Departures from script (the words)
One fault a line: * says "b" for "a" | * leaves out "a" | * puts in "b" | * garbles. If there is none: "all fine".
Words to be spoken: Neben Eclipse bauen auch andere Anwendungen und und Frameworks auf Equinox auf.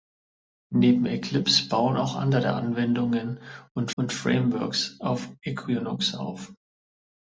all fine